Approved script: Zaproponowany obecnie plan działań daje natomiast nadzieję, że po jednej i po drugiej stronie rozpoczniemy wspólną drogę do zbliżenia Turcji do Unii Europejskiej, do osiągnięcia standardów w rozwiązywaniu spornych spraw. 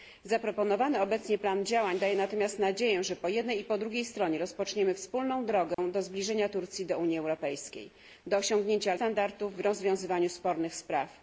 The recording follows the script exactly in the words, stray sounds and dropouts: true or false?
false